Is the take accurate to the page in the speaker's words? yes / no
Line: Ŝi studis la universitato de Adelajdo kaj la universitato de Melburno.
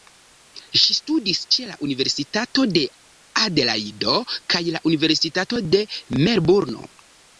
no